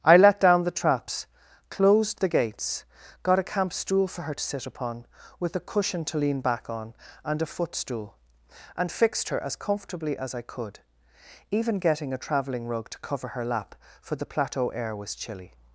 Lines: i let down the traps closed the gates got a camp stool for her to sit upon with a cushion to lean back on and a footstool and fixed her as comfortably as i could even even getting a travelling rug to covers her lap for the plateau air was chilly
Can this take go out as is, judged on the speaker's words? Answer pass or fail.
fail